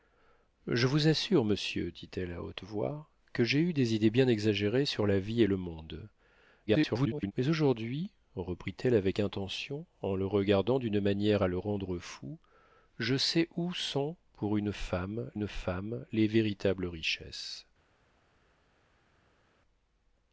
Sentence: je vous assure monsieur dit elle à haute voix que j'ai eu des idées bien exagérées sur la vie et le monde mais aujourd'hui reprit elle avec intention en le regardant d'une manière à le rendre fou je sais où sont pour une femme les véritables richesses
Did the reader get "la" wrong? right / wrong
right